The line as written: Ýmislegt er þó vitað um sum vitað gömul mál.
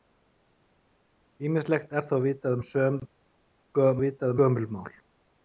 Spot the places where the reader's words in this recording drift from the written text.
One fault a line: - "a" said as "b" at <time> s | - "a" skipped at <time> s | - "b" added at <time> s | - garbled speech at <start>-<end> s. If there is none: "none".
none